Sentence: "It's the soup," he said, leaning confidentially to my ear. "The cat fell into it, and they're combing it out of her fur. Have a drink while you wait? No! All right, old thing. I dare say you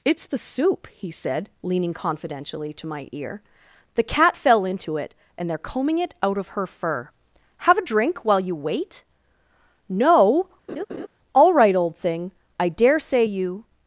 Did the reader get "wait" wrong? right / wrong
right